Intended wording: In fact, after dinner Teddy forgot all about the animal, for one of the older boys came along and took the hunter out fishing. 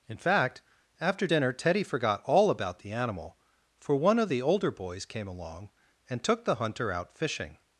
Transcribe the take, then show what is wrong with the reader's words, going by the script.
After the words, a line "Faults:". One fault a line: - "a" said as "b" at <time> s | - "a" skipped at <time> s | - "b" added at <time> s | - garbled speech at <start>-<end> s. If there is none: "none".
In fact, after dinner Teddy forgot all about the animal, for one of the older boys came along and took the hunter out fishing.
Faults:
none